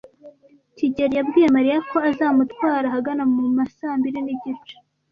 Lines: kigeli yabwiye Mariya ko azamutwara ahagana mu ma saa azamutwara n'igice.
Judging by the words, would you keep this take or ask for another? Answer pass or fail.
fail